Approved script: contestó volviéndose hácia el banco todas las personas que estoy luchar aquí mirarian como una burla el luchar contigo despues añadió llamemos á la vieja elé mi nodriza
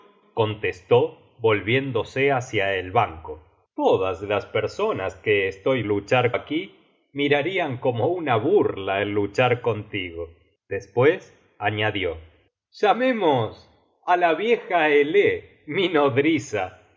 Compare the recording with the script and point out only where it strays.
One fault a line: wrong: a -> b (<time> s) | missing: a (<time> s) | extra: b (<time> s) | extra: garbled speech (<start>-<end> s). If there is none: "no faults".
no faults